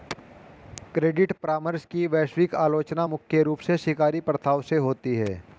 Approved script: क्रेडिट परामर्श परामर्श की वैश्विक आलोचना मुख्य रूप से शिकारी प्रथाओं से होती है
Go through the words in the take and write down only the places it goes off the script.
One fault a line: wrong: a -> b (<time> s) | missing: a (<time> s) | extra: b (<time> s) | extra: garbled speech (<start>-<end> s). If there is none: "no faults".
missing: परामर्श (1.9 s)